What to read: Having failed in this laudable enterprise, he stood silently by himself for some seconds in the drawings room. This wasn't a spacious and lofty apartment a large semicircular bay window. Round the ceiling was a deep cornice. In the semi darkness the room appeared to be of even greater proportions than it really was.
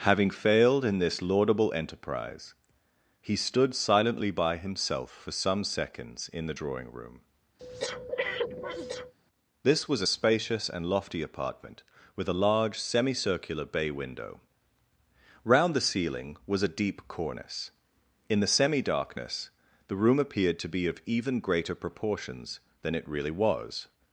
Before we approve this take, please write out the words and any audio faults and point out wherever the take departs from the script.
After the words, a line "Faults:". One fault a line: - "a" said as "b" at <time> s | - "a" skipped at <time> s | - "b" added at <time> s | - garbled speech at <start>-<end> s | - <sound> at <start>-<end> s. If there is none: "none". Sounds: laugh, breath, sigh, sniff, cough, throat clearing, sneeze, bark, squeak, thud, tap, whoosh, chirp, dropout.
Having failed in this laudable enterprise, he stood silently by himself for some seconds in the drawing room. This was a spacious and lofty apartment with a large semicircular bay window. Round the ceiling was a deep cornice. In the semi darkness the room appeared to be of even greater proportions than it really was.
Faults:
- "drawings" said as "drawing" at 6.5 s
- breath at 7.6-9.1 s
- "wasn't" said as "was" at 9.9 s
- "with" added at 12.2 s